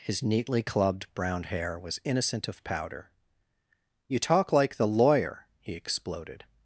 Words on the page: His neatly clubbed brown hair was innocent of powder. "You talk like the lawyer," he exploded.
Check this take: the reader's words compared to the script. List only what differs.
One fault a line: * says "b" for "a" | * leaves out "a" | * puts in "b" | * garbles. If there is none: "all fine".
all fine